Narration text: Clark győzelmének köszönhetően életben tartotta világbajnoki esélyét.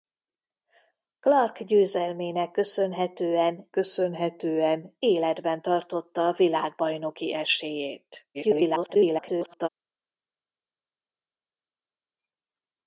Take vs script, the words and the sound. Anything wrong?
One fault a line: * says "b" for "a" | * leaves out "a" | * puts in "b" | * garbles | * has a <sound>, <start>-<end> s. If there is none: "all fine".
* puts in "köszönhetően"
* garbles